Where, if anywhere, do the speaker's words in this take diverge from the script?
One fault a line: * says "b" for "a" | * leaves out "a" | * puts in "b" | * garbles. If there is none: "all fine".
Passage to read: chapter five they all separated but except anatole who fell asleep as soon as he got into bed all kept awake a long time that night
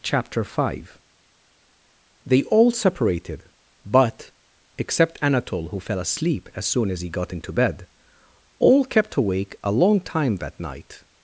all fine